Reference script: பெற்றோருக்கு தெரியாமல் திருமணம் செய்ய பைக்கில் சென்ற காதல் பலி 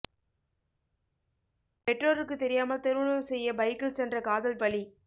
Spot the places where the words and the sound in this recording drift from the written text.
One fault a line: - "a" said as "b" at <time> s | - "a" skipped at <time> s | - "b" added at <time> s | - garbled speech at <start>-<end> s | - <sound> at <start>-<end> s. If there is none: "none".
none